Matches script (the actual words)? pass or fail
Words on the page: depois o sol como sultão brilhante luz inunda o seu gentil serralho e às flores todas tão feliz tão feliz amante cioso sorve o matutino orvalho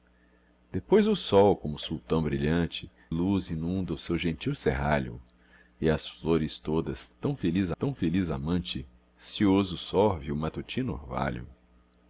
pass